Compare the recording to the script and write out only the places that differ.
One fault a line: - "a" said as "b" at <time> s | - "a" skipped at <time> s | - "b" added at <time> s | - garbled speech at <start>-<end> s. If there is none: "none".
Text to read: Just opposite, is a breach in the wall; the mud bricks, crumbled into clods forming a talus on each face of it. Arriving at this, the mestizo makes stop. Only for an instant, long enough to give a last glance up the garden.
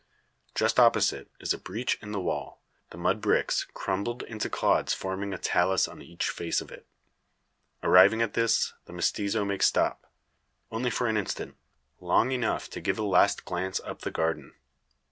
none